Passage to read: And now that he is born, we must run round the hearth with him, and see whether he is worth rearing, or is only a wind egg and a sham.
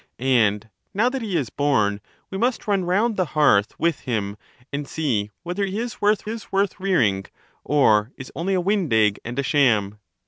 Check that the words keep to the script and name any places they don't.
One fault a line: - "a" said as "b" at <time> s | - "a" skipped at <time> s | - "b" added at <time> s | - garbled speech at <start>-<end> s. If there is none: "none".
- "is worth" added at 6.3 s